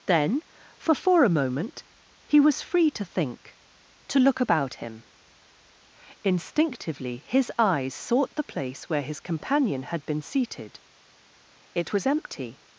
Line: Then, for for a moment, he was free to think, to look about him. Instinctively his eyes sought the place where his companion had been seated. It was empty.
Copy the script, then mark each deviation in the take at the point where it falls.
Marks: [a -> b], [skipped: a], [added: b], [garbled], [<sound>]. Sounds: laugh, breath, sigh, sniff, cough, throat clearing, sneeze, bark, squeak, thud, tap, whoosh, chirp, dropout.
Then, for for a moment, he was free to think, to look about him. Instinctively his eyes sought the place where his companion had been seated. It was empty.